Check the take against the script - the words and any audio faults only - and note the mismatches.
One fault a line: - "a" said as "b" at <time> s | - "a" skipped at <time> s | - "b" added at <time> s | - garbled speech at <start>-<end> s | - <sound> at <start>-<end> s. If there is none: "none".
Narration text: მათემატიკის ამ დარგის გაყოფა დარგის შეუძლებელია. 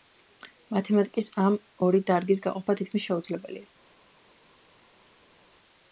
- "ორი" added at 1.9 s
- "დარგის" said as "თითქმის" at 2.8 s